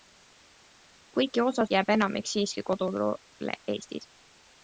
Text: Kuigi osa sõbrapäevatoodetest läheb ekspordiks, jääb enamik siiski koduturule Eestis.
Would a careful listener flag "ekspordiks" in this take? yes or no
yes